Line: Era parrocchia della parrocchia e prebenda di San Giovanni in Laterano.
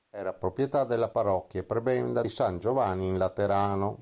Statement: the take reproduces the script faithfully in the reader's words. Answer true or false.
false